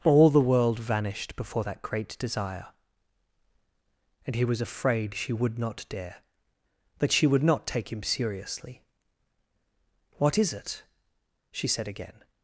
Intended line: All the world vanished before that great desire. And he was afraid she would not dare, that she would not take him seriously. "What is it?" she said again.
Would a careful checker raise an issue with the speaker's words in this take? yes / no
no